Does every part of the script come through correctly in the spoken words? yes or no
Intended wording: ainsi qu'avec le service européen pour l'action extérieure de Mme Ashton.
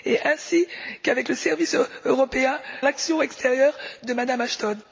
no